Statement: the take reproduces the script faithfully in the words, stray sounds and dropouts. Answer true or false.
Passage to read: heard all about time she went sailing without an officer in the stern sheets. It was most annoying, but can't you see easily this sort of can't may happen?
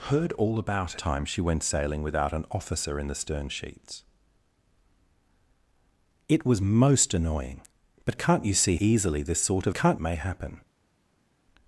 true